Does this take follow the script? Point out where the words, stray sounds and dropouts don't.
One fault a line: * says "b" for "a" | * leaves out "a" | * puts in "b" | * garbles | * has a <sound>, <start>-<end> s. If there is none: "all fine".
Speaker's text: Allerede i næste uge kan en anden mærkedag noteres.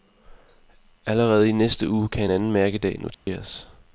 * has a dropout, 3.1-3.3 s